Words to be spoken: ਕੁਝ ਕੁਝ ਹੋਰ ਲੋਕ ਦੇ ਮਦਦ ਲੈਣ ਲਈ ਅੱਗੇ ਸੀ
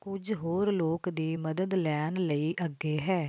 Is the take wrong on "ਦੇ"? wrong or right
wrong